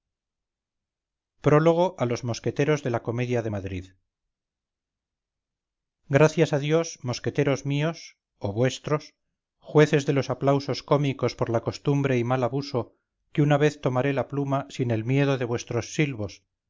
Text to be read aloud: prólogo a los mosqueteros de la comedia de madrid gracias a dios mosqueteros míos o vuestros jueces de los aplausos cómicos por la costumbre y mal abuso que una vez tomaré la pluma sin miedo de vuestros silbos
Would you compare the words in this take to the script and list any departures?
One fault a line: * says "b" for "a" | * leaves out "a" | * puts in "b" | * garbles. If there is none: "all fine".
* puts in "el"